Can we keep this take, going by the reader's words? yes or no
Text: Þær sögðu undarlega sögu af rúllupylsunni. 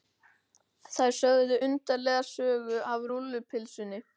yes